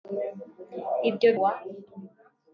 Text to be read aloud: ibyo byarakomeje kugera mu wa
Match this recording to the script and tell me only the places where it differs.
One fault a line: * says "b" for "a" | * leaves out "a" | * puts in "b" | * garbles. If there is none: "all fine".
* leaves out "byarakomeje kugera mu"